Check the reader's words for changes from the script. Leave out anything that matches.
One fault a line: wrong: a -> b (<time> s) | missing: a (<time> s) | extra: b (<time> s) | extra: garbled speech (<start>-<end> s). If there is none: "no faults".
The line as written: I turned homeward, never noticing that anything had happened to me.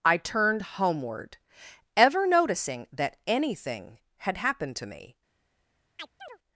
wrong: never -> ever (2.0 s)